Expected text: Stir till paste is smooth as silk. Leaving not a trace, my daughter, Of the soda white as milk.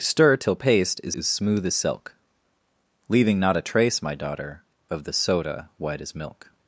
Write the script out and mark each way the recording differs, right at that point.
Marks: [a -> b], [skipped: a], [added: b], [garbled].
Stir till paste is [added: is] smooth as silk. Leaving not a trace, my daughter, Of the soda white as milk.